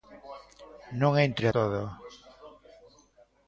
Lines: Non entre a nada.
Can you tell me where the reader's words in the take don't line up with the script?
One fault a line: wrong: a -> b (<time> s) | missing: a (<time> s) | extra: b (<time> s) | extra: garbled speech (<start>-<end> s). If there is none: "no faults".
wrong: nada -> todo (1.6 s)